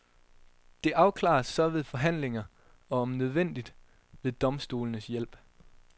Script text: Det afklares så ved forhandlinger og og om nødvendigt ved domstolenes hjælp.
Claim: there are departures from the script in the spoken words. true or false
true